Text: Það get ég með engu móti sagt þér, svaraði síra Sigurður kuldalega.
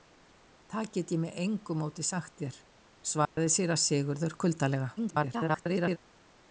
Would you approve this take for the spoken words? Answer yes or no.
no